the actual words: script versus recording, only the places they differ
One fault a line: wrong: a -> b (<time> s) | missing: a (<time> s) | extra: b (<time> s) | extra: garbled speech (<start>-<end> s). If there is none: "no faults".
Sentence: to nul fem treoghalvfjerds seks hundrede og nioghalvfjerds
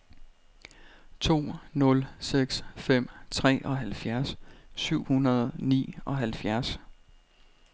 extra: seks (2.2 s)
wrong: seks -> syv (4.7 s)